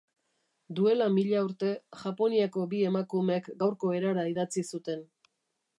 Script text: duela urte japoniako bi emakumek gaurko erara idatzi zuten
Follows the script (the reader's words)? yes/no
no